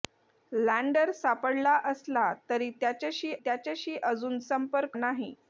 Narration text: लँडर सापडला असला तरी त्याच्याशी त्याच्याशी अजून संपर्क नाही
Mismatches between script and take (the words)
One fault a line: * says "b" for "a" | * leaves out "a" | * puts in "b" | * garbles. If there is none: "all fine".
all fine